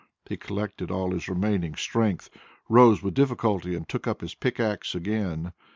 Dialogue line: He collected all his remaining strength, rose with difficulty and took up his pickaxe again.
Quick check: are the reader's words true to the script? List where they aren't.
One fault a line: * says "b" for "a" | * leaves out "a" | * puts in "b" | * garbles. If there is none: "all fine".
all fine